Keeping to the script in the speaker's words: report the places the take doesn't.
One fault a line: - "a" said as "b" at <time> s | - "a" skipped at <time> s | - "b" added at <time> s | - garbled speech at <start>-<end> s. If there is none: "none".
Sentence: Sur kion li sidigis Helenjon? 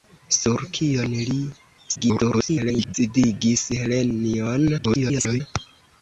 - garbled speech at 1.9-2.9 s
- garbled speech at 4.8-5.4 s